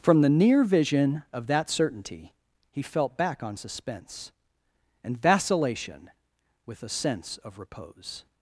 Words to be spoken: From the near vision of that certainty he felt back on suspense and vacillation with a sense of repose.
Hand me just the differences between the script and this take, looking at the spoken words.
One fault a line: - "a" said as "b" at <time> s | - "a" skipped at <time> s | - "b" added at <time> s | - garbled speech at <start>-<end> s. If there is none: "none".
none